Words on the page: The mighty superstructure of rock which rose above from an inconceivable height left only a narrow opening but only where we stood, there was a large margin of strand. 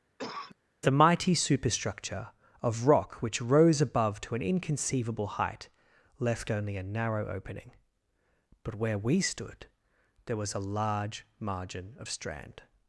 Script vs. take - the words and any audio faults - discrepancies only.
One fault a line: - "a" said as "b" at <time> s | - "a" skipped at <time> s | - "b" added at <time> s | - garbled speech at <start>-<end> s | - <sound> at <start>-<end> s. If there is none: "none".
- cough at 0.2-0.6 s
- "from" said as "to" at 4.2 s
- "only" skipped at 8.7 s